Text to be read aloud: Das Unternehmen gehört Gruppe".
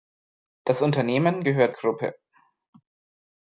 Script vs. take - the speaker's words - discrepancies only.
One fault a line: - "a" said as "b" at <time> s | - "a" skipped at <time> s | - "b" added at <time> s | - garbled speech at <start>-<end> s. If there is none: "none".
none